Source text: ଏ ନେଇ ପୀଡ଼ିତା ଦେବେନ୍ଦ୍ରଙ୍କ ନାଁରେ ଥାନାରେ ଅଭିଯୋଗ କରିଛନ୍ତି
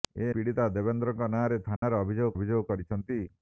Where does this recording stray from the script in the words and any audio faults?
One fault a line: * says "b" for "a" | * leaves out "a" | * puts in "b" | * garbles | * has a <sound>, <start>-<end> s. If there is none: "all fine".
* leaves out "ନେଇ"
* has a dropout, 1.8-1.8 s
* puts in "ଅଭିଯୋଗ"